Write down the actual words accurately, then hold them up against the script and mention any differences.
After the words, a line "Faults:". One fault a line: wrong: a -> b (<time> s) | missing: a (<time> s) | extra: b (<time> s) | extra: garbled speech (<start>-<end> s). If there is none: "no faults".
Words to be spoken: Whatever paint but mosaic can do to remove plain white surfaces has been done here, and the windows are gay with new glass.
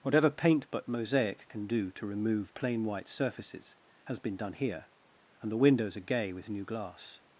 Whatever paint but mosaic can do to remove plain white surfaces has been done here, and the windows are gay with new glass.
Faults:
no faults